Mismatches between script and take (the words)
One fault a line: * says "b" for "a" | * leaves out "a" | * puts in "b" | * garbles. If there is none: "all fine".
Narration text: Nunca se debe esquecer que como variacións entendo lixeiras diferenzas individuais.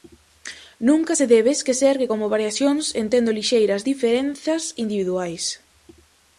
all fine